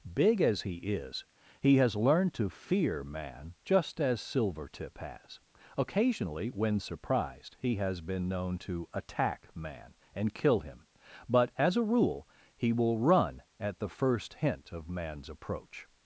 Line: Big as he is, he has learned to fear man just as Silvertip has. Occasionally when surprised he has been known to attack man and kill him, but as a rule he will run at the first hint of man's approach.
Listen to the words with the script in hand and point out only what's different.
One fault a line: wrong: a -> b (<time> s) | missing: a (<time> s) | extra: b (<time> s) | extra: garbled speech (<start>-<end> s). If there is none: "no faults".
no faults